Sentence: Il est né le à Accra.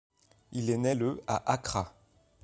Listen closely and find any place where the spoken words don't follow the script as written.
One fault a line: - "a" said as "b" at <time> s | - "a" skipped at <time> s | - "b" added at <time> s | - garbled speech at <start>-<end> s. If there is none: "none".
none